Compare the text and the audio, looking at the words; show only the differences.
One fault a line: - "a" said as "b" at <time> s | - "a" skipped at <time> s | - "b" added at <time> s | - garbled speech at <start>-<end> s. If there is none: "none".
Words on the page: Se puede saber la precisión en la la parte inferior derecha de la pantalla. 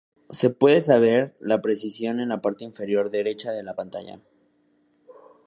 - "la" skipped at 2.4 s